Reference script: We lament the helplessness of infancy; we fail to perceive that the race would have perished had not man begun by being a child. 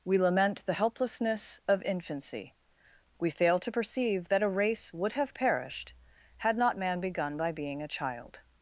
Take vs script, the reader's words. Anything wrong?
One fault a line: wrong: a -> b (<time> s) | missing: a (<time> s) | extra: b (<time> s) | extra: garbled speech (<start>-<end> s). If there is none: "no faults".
wrong: the -> a (4.4 s)